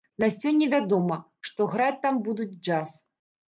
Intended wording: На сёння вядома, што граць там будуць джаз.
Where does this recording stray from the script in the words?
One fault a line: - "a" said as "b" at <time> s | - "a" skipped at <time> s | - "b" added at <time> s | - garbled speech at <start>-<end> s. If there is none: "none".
none